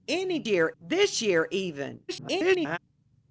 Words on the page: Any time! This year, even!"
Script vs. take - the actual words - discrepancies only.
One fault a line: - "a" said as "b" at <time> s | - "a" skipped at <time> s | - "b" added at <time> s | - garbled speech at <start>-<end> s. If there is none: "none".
- "time" said as "year" at 0.5 s
- garbled speech at 2.1-2.8 s